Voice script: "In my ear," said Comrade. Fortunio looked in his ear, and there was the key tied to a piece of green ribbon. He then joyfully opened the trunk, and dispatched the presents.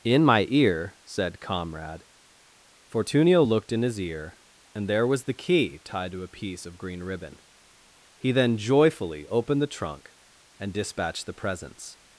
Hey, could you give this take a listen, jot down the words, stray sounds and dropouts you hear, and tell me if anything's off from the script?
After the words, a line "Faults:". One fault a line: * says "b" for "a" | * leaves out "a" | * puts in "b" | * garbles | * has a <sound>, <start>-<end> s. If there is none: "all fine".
"In my ear," said Comrade. Fortunio looked in his ear, and there was the key tied to a piece of green ribbon. He then joyfully opened the trunk, and dispatched the presents.
Faults:
all fine